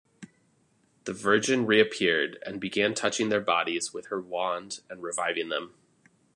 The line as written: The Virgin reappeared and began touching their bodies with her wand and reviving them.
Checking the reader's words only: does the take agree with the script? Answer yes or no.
yes